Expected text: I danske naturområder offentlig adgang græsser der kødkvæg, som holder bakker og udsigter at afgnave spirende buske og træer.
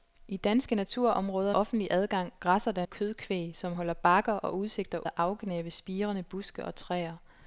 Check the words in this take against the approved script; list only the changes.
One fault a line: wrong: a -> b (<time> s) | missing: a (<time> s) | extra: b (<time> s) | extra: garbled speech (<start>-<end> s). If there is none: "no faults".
no faults